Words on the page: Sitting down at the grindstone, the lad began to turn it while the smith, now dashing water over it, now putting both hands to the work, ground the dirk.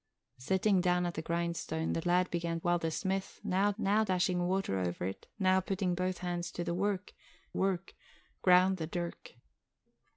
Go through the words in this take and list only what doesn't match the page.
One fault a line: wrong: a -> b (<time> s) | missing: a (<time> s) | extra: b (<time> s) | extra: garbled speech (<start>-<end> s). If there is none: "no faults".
missing: to turn it (2.6 s)
extra: now (3.8 s)
extra: work (7.5 s)